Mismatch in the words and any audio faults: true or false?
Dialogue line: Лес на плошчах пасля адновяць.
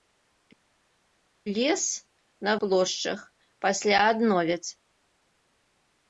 false